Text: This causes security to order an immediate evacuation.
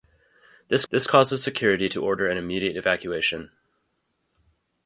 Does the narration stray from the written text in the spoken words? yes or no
yes